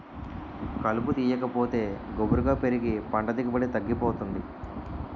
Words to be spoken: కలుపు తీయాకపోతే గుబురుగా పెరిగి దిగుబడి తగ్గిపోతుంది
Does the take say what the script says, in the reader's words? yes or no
no